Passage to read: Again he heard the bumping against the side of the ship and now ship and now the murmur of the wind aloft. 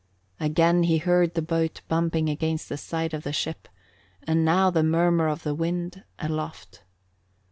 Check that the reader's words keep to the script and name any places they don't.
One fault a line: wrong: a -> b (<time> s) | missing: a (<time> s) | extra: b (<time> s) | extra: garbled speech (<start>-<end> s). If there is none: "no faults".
extra: boat (1.4 s)
missing: ship and now (4.7 s)